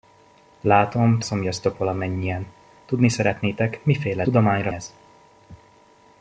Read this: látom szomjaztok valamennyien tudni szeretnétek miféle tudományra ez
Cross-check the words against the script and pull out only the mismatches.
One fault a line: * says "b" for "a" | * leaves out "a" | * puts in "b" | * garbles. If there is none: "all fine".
all fine